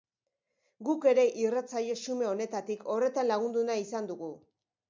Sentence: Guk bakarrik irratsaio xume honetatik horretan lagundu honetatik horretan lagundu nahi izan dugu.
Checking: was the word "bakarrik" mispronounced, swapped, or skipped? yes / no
yes